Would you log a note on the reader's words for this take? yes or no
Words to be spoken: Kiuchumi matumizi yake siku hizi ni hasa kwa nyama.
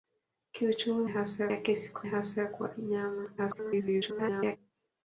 yes